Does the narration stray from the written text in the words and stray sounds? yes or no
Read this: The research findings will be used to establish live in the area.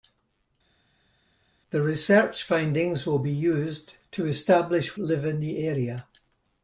no